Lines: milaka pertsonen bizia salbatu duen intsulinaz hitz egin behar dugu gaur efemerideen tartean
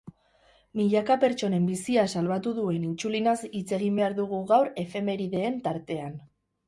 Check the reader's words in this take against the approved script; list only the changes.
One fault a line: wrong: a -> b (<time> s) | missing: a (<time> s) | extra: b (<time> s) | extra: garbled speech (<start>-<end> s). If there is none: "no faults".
no faults